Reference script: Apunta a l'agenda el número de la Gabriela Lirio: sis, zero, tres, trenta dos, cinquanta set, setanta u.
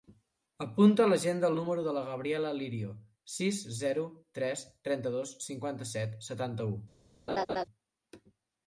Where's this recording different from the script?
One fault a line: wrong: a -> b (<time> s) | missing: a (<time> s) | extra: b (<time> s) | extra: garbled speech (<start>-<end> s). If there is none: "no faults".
no faults